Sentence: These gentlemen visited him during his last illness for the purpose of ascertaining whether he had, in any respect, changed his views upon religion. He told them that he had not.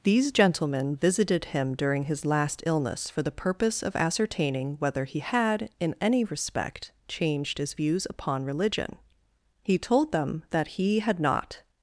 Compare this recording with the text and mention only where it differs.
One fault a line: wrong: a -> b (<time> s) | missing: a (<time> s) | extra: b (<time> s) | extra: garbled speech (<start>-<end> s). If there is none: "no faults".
no faults